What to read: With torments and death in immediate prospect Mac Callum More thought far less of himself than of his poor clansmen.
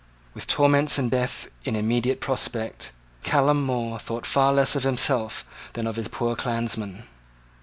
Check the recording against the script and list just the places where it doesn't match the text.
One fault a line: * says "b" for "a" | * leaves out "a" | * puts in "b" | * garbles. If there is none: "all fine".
* leaves out "Mac"